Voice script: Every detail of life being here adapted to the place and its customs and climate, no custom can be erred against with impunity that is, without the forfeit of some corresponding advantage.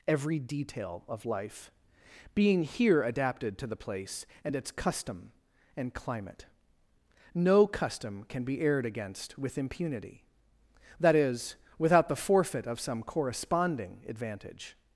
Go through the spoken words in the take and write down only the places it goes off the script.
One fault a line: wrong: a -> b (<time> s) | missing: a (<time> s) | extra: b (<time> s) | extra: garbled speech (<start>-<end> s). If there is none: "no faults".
wrong: customs -> custom (4.7 s)